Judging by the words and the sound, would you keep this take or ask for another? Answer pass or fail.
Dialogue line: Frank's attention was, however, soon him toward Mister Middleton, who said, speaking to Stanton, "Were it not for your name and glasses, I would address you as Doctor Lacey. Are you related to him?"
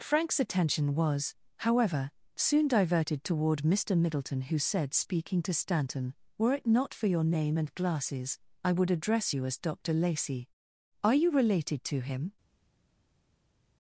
fail